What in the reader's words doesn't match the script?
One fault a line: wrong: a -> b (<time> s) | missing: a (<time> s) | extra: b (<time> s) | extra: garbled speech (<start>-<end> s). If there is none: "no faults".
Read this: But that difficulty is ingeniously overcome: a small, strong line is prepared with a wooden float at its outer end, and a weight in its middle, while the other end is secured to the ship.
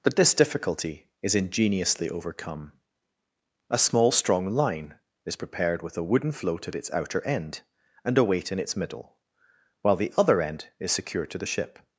wrong: that -> this (0.1 s)